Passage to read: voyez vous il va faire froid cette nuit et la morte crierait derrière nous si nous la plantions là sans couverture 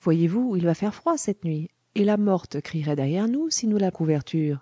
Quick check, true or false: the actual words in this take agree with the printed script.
false